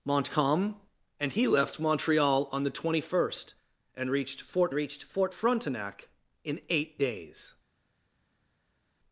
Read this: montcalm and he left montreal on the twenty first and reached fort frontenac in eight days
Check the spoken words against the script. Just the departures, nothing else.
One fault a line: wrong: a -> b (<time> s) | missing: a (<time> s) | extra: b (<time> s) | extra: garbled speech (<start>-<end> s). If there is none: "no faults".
extra: reached fort (4.7 s)